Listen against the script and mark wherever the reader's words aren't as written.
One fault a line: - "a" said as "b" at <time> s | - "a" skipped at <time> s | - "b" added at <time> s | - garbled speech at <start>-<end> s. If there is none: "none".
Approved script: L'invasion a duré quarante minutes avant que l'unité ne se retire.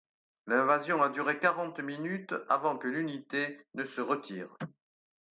none